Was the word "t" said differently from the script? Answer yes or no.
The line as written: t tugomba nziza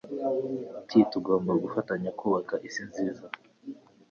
no